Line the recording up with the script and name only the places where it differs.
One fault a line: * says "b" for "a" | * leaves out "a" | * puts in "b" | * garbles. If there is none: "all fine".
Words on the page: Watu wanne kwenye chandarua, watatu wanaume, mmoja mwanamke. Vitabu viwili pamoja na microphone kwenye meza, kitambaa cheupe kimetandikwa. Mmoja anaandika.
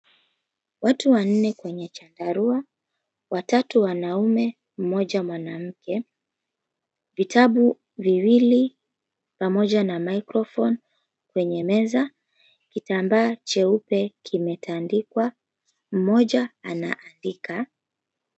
all fine